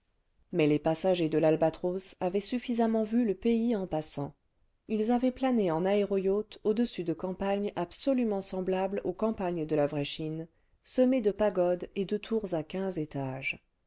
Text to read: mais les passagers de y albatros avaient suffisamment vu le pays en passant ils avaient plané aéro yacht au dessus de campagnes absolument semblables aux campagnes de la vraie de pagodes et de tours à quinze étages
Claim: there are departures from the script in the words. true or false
true